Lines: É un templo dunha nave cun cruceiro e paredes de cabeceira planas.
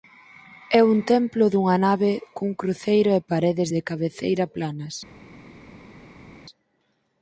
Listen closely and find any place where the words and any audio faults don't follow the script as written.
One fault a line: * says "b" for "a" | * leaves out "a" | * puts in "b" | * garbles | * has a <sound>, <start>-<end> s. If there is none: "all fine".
all fine